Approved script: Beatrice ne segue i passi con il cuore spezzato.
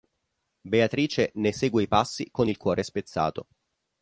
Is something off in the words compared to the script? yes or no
no